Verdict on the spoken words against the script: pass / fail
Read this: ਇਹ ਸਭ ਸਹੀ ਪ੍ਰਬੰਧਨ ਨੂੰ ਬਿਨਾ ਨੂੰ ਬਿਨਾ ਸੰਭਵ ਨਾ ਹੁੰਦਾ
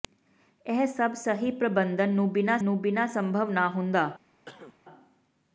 pass